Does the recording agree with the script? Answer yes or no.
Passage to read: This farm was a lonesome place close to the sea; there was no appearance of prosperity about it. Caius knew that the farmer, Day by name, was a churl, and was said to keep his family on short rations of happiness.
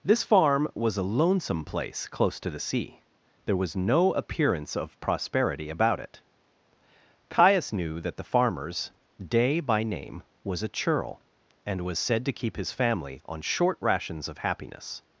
no